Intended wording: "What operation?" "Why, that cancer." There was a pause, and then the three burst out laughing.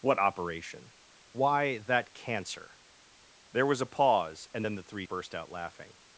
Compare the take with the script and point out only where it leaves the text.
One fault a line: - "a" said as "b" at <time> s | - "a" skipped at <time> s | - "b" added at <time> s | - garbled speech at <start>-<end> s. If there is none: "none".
none